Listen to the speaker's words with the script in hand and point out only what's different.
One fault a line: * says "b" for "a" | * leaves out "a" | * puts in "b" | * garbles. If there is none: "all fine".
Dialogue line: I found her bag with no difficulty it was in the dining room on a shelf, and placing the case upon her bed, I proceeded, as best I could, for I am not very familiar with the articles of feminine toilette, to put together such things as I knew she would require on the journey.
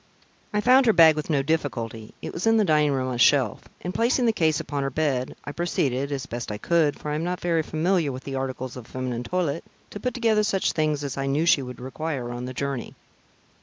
all fine